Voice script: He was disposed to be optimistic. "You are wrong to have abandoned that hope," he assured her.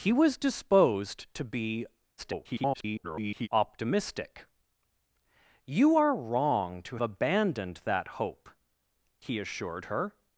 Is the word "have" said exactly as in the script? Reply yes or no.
no